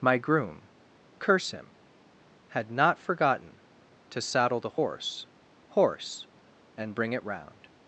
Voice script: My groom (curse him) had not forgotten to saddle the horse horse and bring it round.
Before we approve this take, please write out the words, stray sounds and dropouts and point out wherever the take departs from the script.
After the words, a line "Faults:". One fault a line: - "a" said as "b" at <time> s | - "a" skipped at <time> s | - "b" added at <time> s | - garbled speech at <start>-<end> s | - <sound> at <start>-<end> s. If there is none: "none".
My groom (curse him) had not forgotten to saddle the horse horse and bring it round.
Faults:
none